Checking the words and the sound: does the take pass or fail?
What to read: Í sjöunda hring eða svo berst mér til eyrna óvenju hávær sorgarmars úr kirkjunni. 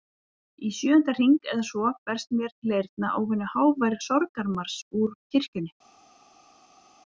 pass